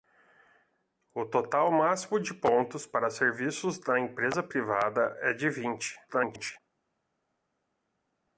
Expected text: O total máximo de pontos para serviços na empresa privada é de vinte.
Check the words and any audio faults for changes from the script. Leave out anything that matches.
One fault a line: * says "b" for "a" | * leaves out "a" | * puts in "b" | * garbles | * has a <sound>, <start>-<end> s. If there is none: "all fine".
* garbles